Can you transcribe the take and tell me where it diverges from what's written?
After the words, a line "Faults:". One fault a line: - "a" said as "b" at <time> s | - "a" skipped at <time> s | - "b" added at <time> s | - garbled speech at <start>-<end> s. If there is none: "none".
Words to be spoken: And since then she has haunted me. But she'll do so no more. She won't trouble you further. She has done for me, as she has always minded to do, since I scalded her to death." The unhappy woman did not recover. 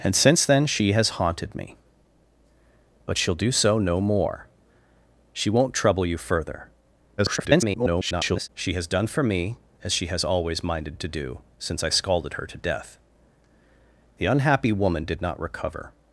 And since then she has haunted me. But she'll do so no more. She won't trouble you further. [garbled] She has done for me, as she has always minded to do, since I scalded her to death." The unhappy woman did not recover.
Faults:
- garbled speech at 7.2-8.5 s